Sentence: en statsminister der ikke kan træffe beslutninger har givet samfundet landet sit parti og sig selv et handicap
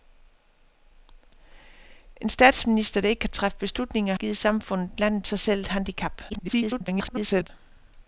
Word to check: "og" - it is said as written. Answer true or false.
false